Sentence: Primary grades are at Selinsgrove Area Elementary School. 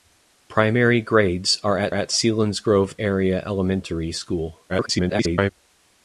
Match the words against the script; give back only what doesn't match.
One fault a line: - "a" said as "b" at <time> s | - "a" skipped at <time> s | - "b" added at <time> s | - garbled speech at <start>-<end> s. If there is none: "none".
- "at" added at 1.9 s
- garbled speech at 4.7-5.5 s